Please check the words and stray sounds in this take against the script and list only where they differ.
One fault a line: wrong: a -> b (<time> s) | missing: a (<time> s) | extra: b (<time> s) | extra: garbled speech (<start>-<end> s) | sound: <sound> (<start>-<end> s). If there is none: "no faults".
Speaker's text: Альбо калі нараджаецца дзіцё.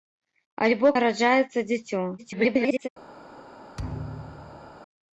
missing: калі (0.9 s)
extra: garbled speech (2.2-2.9 s)
sound: thud (3.8-4.8 s)